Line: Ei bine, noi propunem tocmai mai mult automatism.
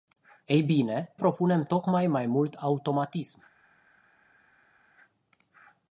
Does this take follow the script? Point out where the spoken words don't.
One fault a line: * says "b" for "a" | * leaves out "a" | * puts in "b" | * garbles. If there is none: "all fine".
* leaves out "noi"